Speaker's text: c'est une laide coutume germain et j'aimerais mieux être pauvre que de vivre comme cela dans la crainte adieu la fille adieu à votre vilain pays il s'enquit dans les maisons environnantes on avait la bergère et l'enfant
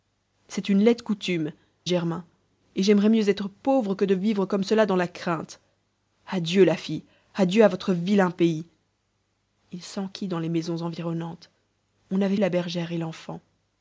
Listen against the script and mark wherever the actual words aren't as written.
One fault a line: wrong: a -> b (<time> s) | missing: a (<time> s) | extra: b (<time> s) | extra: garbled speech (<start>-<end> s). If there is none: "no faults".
no faults